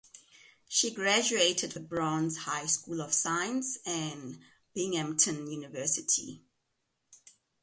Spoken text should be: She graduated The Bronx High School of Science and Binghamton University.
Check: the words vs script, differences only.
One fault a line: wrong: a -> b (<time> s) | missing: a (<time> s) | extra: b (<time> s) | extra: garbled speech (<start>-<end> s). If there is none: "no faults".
no faults